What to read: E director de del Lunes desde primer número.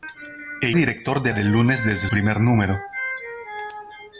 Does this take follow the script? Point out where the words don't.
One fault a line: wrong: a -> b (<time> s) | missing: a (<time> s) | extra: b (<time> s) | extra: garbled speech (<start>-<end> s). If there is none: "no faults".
no faults